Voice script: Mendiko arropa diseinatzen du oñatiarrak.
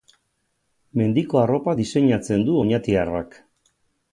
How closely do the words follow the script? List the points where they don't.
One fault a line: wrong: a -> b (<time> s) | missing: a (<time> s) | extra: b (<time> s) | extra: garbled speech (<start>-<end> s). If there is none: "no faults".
no faults